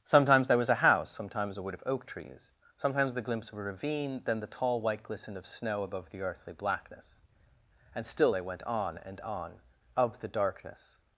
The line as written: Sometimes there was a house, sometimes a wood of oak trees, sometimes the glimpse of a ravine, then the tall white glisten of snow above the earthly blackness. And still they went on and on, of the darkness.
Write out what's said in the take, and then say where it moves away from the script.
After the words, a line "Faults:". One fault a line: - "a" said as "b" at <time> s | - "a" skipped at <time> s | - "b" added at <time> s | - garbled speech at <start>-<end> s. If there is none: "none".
Sometimes there was a house, sometimes a wood of oak trees, sometimes the glimpse of a ravine, then the tall white glisten of snow above the earthly blackness. And still they went on and on, of the darkness.
Faults:
none